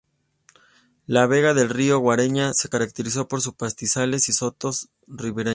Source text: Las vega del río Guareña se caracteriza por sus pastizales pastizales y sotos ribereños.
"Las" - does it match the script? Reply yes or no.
no